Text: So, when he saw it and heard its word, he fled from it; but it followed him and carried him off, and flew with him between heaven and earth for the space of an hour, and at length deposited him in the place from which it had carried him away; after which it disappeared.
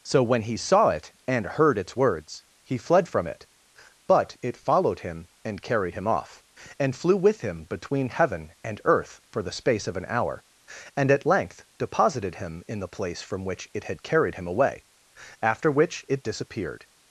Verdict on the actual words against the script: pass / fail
fail